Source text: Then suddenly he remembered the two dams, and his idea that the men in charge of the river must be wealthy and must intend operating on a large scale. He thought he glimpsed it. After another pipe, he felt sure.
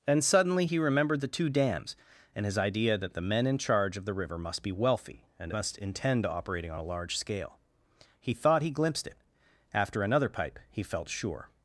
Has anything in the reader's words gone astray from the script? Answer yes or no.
yes